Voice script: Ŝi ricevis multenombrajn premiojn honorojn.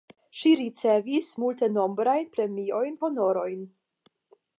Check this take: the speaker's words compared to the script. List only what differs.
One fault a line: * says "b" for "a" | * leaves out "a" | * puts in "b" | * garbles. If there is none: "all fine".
all fine